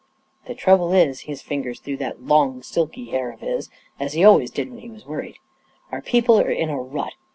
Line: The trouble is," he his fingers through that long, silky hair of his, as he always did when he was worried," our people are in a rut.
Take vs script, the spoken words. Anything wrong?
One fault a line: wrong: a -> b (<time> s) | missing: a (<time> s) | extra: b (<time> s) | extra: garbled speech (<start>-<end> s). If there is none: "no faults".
no faults